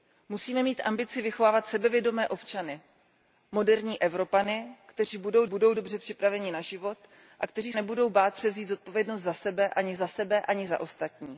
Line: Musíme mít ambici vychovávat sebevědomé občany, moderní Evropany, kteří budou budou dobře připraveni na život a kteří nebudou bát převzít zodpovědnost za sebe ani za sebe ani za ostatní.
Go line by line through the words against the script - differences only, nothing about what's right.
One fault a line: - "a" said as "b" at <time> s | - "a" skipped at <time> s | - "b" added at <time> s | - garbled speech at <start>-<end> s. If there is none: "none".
none